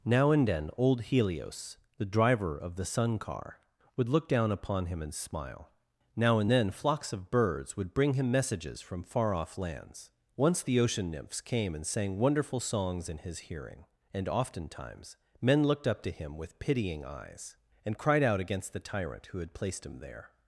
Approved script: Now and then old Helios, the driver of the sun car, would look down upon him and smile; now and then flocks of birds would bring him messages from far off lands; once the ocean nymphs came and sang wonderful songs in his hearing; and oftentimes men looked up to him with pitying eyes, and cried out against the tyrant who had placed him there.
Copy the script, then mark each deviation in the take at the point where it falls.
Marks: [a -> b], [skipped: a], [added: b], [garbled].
Now and then old Helios, the driver of the sun car, would look down upon him and smile; now and then flocks of birds would bring him messages from far off lands; once the ocean nymphs came and sang wonderful songs in his hearing; and oftentimes men looked up to him with pitying eyes, and cried out against the tyrant who had placed him there.